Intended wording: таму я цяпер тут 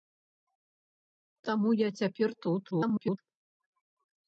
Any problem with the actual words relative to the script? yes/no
yes